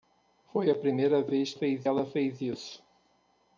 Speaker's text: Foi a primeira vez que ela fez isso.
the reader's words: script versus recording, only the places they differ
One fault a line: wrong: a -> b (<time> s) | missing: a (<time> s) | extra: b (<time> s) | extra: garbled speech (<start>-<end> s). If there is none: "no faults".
wrong: que -> fez (1.5 s)